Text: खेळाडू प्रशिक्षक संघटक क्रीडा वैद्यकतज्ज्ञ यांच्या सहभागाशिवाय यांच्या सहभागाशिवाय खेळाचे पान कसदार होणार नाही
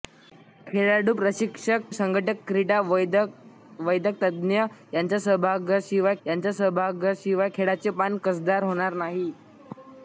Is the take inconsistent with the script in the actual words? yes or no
no